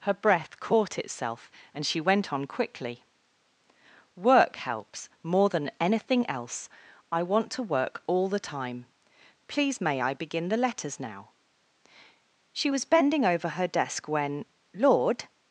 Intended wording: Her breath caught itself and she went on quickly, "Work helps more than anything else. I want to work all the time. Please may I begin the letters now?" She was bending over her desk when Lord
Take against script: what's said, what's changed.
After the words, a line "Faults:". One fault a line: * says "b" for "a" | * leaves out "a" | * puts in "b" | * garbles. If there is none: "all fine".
Her breath caught itself and she went on quickly, "Work helps more than anything else. I want to work all the time. Please may I begin the letters now?" She was bending over her desk when Lord
Faults:
all fine